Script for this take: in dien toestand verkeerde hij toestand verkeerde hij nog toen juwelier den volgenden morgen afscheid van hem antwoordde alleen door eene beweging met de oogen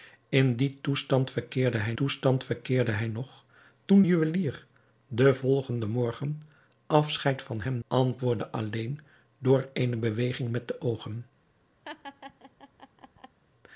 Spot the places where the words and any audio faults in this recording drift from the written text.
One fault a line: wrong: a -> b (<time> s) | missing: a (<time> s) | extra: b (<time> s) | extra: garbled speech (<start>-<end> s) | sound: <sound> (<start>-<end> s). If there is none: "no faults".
sound: laugh (11.8-13.4 s)